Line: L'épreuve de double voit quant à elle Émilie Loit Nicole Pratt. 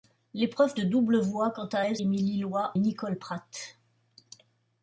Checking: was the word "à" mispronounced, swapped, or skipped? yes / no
no